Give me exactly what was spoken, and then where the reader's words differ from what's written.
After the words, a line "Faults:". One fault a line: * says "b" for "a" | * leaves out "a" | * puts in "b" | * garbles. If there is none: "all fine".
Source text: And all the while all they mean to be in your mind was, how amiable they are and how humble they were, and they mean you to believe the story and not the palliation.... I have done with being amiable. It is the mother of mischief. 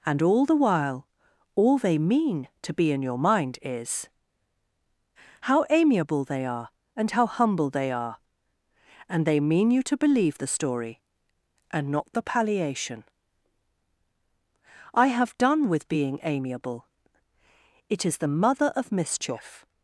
And all the while all they mean to be in your mind is, how amiable they are and how humble they are, and they mean you to believe the story and not the palliation.... I have done with being amiable. It is the mother of mischief.
Faults:
* says "is" for "was"
* says "are" for "were"